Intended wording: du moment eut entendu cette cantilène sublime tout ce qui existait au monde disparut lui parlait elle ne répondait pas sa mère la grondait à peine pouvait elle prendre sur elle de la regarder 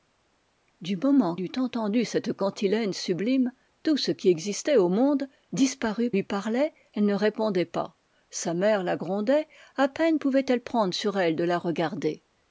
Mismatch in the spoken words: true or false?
false